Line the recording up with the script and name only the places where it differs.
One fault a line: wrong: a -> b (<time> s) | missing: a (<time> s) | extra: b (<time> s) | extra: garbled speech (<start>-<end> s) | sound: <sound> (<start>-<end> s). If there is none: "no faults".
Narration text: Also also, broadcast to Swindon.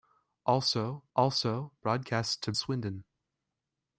no faults